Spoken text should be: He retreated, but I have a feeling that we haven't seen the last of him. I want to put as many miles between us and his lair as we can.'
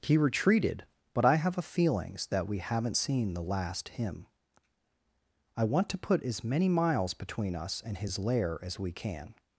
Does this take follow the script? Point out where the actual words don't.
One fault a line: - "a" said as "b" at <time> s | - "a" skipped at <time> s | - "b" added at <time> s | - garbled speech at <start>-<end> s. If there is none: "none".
- "feeling" said as "feelings" at 1.6 s
- "of" skipped at 3.9 s